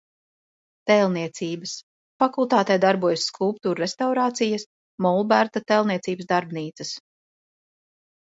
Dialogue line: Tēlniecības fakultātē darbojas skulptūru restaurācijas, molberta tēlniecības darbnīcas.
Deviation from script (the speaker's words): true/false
false